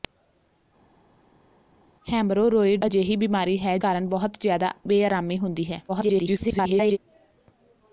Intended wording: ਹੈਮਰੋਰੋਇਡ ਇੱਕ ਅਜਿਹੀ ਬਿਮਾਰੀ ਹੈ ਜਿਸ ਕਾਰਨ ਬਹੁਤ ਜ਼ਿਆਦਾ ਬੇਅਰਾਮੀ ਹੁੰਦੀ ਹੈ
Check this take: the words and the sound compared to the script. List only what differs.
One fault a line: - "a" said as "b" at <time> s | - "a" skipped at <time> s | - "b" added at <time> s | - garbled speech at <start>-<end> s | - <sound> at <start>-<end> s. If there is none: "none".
- "ਇੱਕ" skipped at 2.8 s
- "ਜਿਸ" skipped at 3.8 s
- garbled speech at 5.9-7.0 s